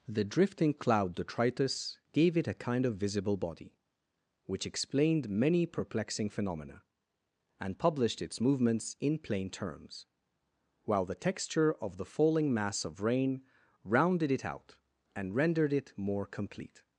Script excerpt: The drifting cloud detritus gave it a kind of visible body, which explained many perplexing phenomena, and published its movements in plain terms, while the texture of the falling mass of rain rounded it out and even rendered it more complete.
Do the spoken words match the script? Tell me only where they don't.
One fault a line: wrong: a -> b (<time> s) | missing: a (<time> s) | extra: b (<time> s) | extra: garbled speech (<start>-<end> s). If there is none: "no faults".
missing: even (15.3 s)